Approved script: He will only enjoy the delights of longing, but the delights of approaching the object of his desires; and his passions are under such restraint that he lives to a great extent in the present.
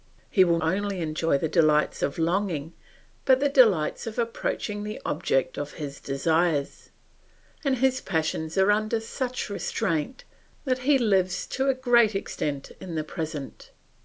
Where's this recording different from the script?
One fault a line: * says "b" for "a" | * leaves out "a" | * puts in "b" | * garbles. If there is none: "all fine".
all fine